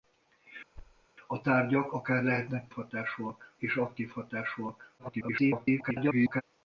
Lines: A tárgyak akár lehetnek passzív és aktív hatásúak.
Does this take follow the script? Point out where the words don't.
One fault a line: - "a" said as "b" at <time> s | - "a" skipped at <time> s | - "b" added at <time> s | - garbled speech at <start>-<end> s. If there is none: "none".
- "passzív" said as "hatásúak" at 2.7 s
- garbled speech at 5.0-6.4 s